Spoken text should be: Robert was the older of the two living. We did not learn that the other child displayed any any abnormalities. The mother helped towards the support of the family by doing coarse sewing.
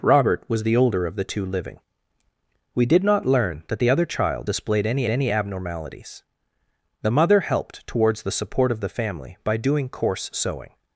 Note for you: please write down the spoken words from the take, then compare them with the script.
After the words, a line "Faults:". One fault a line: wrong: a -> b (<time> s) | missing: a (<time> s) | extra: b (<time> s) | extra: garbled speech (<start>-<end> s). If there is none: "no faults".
Robert was the older of the two living. We did not learn that the other child displayed any any abnormalities. The mother helped towards the support of the family by doing coarse sewing.
Faults:
no faults